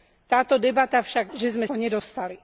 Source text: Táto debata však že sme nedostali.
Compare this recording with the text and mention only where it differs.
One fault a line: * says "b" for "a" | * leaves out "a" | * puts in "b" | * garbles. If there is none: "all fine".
all fine